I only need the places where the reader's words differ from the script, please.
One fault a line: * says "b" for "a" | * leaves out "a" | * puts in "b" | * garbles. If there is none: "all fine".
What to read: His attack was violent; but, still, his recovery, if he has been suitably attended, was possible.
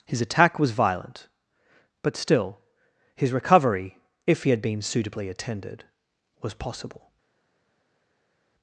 * says "had" for "has"